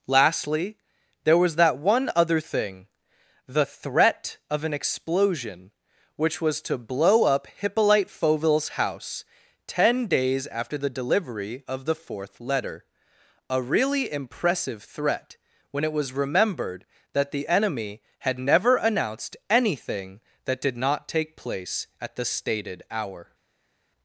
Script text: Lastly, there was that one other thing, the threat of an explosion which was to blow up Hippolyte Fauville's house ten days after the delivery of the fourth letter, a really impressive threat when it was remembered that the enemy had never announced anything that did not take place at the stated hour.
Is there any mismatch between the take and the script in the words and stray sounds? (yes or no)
no